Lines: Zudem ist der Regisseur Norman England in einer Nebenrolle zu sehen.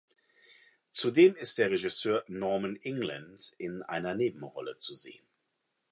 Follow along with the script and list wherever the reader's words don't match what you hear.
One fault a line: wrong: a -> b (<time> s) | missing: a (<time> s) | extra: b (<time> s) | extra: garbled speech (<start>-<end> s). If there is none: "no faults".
no faults